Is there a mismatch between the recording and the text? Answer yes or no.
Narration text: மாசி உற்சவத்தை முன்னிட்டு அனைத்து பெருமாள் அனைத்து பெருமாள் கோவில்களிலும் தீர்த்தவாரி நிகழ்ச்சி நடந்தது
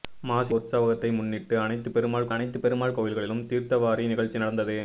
no